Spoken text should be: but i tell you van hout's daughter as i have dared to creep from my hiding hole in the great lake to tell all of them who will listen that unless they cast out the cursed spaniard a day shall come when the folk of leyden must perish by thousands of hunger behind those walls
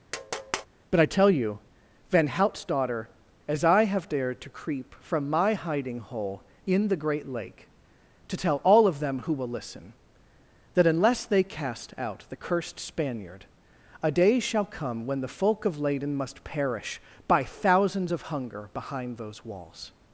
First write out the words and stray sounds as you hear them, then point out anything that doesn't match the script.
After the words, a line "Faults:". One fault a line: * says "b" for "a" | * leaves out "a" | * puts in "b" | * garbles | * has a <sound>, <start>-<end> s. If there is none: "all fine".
but i tell you van hout's daughter as i have dared to creep from my hiding hole in the great lake to tell all of them who will listen that unless they cast out the cursed spaniard a day shall come when the folk of leyden must perish by thousands of hunger behind those walls
Faults:
* has a tap, 0.1-0.7 s